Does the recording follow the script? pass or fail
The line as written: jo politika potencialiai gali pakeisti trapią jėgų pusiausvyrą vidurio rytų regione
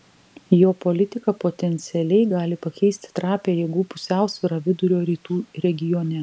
pass